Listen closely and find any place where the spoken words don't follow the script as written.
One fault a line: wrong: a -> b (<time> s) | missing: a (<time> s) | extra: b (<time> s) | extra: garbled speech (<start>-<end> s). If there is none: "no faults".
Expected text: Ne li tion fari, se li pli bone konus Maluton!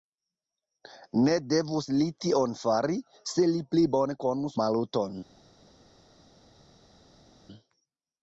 extra: devus (1.5 s)